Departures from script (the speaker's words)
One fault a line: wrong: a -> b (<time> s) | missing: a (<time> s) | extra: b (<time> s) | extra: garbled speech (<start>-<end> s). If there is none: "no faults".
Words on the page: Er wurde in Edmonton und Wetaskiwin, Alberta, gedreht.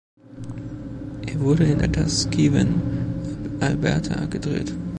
missing: Edmonton und (1.8 s)